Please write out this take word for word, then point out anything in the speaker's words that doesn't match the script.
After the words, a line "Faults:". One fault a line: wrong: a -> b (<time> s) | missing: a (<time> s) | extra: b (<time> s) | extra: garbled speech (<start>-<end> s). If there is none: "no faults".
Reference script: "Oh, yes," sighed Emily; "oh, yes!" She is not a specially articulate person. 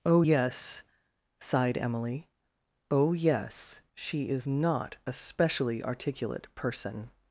"Oh, yes," sighed Emily; "oh, yes!" She is not a specially articulate person.
Faults:
no faults